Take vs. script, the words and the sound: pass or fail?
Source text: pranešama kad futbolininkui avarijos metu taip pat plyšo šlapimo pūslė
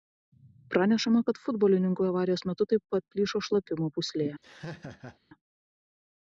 fail